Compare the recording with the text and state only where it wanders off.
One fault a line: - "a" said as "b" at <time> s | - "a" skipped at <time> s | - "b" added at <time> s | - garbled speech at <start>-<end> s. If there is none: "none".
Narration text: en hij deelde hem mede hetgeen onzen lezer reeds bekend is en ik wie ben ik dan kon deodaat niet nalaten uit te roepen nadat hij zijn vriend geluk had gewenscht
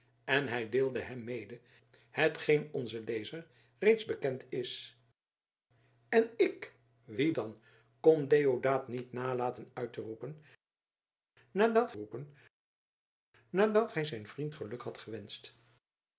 - "ben ik" skipped at 7.3 s
- "roepen nadat" added at 11.9 s